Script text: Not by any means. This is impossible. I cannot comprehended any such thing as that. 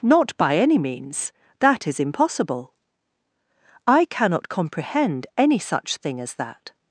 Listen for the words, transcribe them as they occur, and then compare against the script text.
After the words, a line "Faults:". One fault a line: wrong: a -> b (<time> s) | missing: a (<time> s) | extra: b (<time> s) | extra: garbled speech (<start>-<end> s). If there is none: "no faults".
Not by any means. That is impossible. I cannot comprehend any such thing as that.
Faults:
wrong: This -> That (1.6 s)
wrong: comprehended -> comprehend (4.5 s)